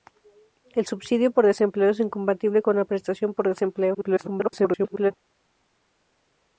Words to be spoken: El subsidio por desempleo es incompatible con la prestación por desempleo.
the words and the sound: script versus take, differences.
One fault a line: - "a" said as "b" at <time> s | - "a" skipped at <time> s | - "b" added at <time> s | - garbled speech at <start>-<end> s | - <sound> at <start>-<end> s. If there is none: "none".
- garbled speech at 3.9-5.1 s